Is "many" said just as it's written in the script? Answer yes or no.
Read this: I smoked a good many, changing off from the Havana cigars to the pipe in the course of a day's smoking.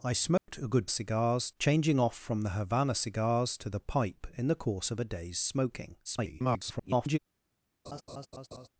no